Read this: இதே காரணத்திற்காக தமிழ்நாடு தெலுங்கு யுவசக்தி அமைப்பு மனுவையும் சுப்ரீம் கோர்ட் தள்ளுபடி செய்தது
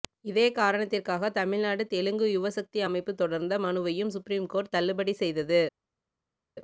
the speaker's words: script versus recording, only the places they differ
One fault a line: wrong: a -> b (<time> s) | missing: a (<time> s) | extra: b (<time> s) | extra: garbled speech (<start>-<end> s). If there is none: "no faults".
extra: தொடர்ந்த (3.2 s)